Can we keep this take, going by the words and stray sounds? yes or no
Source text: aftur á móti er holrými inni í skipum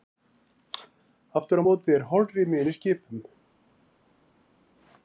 yes